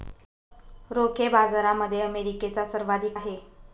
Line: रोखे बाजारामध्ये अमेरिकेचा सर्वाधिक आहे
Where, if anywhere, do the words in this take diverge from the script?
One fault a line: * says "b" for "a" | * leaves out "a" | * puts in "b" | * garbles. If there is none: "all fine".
all fine